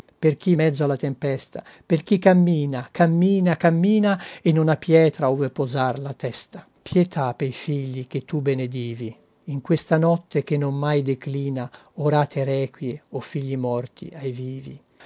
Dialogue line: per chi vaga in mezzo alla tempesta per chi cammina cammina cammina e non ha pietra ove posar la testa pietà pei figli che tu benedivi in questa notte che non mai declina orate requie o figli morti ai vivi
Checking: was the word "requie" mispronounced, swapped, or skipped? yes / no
no